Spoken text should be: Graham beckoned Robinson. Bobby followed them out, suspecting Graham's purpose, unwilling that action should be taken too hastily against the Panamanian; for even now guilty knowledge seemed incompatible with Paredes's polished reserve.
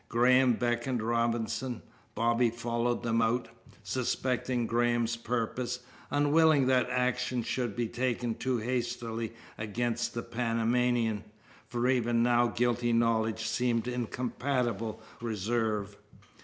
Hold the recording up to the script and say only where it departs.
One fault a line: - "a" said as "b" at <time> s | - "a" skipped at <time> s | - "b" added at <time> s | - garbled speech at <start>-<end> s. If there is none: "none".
- "with Paredes's polished" skipped at 15.0 s